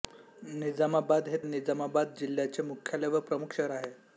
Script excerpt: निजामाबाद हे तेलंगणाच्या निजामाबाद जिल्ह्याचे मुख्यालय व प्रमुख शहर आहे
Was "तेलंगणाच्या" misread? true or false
true